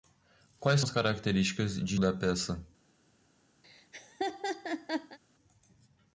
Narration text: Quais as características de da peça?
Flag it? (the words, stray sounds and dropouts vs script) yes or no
yes